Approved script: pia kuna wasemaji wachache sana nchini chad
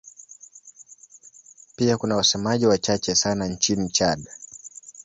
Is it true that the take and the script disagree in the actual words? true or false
false